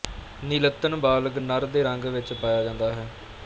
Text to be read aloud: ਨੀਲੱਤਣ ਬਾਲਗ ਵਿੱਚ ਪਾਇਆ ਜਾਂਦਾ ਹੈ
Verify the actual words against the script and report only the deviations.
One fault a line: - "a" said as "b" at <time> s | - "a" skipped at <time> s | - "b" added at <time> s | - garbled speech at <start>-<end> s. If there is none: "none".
- "ਨਰ ਦੇ ਰੰਗ" added at 1.4 s